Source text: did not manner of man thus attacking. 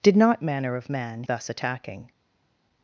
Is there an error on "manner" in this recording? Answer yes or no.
no